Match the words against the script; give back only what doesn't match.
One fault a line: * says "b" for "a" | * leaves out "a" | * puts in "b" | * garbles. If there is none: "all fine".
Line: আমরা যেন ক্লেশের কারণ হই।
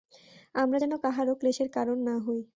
* puts in "কাহারও"
* puts in "না"